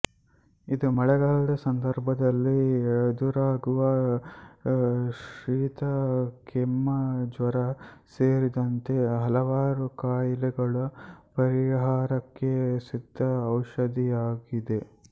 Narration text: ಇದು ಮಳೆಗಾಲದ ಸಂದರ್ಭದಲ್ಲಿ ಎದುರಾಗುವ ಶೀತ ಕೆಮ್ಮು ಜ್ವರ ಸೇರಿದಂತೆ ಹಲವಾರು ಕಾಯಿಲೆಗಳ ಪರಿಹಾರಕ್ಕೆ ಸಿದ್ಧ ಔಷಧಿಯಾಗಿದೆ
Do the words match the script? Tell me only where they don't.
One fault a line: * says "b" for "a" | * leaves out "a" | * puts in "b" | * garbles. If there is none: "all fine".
all fine